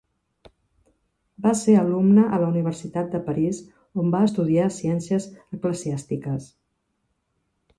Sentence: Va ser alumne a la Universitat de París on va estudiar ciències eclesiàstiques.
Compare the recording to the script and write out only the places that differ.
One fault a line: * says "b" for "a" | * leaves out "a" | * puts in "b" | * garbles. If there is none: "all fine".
all fine